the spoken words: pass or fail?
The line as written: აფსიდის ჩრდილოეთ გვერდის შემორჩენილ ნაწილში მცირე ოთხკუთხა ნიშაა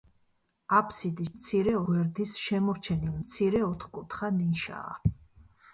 fail